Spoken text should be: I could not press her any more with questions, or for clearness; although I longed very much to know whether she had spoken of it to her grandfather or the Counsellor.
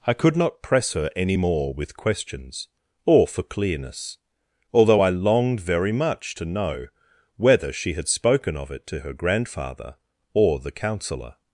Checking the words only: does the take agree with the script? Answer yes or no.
yes